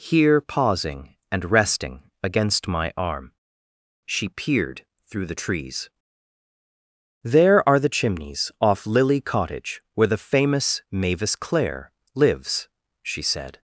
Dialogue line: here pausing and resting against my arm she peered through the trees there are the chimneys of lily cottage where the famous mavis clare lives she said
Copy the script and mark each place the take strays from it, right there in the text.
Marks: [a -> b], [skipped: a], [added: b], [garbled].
here pausing and resting against my arm she peered through the trees there are the chimneys [of -> off] lily cottage where the famous mavis clare lives she said